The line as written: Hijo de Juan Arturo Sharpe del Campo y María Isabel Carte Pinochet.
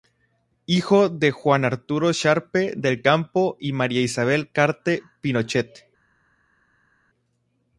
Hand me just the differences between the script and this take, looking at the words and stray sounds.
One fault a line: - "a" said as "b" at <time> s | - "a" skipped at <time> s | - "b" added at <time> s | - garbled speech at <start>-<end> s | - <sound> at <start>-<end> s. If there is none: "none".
none